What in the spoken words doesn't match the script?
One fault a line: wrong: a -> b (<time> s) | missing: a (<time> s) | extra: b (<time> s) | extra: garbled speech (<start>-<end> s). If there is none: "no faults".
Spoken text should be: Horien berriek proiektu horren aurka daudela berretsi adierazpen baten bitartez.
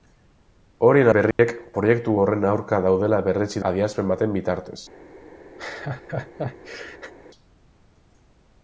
no faults